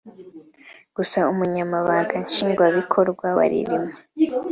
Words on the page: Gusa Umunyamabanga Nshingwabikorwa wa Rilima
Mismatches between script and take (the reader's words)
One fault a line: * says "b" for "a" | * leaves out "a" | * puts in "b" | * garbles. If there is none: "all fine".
all fine